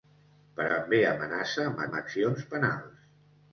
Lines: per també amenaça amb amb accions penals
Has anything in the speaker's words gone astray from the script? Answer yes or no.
no